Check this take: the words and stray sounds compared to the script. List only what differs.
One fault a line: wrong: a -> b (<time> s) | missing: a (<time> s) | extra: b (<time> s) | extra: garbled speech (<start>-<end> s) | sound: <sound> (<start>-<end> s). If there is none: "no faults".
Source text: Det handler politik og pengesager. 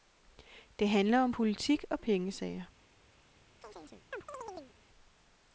extra: om (1.2 s)
sound: chirp (3.6-4.7 s)